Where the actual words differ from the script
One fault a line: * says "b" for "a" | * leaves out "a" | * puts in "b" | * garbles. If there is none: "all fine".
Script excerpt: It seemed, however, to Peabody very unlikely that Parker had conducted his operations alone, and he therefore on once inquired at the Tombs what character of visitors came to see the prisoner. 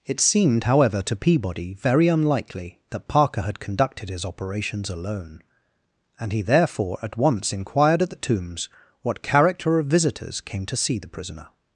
* says "at" for "on"